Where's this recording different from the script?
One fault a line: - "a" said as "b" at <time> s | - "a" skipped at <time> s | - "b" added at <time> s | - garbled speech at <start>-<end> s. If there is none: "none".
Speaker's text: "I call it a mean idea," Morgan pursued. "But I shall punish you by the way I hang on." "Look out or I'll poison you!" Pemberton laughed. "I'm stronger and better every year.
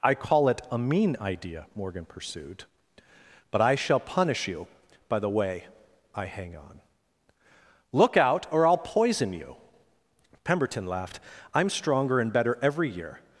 none